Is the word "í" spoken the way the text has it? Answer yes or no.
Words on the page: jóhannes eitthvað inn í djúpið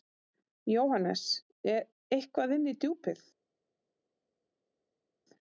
yes